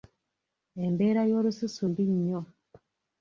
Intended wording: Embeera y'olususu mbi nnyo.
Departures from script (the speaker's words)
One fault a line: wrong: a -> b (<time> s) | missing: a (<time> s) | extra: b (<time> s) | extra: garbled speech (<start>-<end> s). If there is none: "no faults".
no faults